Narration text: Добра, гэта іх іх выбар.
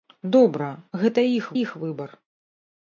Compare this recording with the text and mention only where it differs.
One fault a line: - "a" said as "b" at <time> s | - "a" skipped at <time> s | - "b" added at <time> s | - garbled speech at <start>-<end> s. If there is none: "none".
none